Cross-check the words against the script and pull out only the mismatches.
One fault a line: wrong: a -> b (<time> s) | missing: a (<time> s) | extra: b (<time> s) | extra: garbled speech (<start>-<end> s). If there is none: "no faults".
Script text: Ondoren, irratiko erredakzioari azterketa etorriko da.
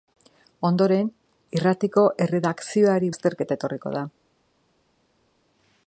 no faults